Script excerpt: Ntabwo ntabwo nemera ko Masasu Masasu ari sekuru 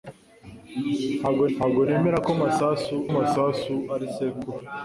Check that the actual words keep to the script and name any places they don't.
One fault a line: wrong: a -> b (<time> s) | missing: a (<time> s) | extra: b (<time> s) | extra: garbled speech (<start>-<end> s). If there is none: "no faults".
no faults